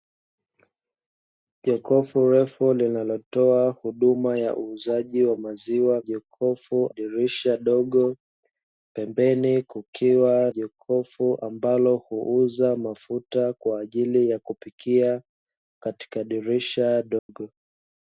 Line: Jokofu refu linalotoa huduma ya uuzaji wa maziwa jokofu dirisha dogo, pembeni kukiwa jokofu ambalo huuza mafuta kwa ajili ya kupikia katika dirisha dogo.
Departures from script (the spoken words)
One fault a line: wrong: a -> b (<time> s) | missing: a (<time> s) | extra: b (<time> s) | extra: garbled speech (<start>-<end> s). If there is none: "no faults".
no faults